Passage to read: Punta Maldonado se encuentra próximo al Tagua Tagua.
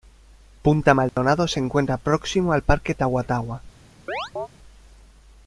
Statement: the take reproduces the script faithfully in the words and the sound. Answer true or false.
false